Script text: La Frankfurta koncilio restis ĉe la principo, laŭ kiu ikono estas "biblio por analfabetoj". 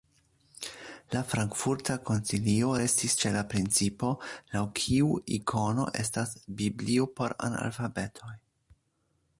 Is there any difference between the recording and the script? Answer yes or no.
no